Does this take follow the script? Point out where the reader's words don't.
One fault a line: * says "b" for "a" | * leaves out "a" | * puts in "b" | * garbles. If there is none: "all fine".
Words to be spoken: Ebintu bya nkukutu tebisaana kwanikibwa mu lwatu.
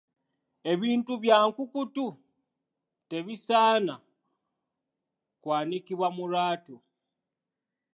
all fine